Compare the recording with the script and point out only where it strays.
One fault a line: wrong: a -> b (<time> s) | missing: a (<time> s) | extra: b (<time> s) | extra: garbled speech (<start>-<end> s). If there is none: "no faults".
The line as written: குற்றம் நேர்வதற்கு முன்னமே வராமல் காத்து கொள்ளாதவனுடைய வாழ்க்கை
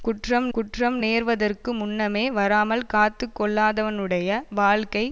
extra: குற்றம் (0.5 s)